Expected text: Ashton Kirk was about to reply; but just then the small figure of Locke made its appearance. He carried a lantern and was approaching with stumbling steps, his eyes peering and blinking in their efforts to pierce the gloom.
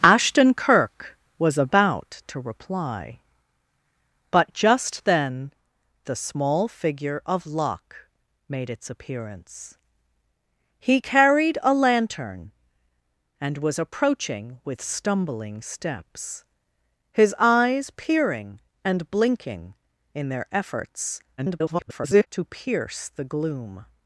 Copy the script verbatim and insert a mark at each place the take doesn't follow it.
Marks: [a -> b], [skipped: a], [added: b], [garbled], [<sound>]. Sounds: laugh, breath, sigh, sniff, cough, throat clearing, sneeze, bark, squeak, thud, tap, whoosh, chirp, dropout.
Ashton Kirk was about to reply; but just then the small figure of Locke made its appearance. He carried a lantern and was approaching with stumbling steps, his eyes peering and blinking in their efforts [garbled] to pierce the gloom.